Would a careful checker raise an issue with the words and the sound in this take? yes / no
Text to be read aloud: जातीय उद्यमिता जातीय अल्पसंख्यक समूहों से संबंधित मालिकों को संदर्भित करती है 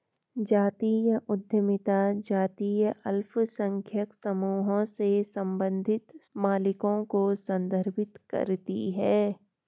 no